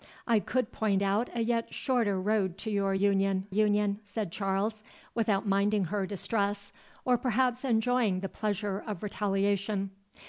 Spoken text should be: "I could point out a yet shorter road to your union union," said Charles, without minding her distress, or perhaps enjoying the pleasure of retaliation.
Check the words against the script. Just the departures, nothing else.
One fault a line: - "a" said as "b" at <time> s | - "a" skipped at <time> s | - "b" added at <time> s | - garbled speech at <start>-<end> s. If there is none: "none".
none